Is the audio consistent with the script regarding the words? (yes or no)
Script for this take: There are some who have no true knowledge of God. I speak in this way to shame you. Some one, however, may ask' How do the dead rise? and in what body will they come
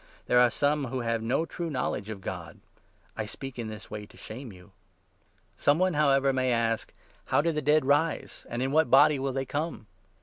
yes